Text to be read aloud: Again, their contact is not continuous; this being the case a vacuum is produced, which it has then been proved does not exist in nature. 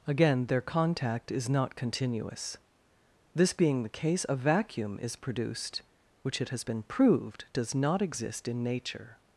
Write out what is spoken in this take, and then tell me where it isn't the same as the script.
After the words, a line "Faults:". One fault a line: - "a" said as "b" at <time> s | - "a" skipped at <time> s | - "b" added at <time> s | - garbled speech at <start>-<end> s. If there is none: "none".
Again, their contact is not continuous; this being the case a vacuum is produced, which it has been proved does not exist in nature.
Faults:
- "then" skipped at 6.6 s